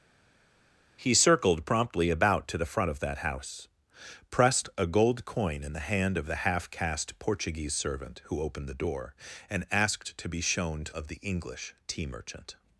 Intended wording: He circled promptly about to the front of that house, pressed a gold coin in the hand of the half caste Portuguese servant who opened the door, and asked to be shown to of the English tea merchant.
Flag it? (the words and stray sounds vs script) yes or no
no